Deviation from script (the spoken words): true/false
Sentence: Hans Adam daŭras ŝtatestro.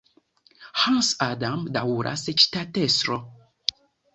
false